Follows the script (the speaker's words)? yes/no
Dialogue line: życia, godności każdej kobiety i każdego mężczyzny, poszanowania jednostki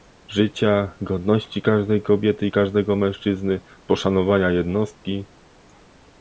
yes